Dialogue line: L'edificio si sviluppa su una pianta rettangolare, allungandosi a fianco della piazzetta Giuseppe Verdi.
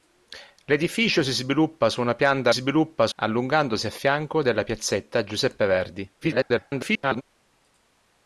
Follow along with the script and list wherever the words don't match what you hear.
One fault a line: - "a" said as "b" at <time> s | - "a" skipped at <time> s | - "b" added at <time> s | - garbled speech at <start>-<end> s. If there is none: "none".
- "rettangolare" said as "sviluppa" at 2.5 s
- garbled speech at 6.2-7.2 s